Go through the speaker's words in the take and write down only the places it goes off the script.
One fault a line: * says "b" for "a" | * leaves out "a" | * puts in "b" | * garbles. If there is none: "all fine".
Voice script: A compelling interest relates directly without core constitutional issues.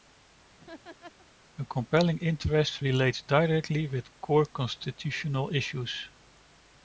* says "with" for "without"